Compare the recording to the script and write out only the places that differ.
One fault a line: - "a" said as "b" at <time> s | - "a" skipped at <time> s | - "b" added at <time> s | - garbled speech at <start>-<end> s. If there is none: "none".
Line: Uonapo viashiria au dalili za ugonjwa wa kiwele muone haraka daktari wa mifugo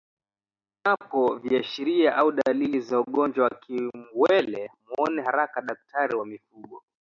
none